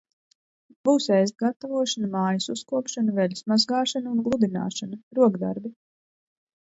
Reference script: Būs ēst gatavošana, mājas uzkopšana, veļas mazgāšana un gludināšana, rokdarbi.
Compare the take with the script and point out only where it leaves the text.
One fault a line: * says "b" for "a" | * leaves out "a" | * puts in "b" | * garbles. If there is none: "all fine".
all fine